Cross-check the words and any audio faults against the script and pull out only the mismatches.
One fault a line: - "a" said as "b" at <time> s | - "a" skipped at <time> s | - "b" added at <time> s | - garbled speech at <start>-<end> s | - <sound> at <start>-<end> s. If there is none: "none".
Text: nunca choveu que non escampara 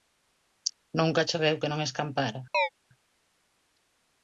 - chirp at 2.5-2.7 s